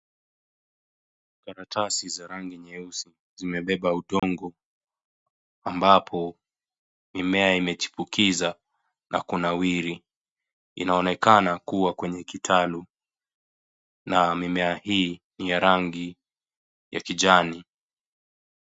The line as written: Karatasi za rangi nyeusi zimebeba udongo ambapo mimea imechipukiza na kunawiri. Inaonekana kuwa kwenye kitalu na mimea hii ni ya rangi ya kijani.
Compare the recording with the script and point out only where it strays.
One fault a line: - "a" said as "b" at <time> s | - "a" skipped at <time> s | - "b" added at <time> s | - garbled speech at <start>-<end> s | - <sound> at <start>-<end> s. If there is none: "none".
- dropout at 4.2-4.2 s